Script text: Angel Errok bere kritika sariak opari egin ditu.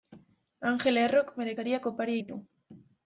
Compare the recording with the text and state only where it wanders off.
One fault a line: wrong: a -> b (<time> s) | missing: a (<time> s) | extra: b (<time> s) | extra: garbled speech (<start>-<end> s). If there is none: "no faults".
missing: kritika (1.5 s)
missing: egin (2.2 s)